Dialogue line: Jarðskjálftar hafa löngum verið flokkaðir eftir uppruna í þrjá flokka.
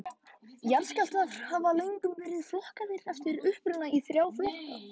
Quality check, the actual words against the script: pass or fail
pass